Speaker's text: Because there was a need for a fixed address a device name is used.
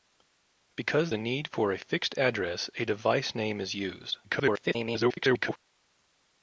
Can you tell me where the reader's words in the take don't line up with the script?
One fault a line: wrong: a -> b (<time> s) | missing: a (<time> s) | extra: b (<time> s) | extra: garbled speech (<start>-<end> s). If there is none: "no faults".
missing: there was (1.1 s)
extra: garbled speech (4.2-5.6 s)